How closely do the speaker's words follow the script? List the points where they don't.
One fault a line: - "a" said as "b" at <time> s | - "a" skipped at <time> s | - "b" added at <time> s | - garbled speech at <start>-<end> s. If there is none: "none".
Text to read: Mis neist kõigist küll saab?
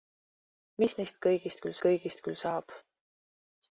- "kõigist küll" added at 1.8 s